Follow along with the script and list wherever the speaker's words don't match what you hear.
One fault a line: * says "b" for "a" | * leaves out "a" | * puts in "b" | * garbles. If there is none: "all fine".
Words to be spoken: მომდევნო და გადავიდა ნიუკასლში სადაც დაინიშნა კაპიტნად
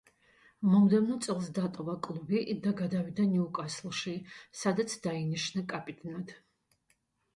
* puts in "წელს დატოვა კლუბი"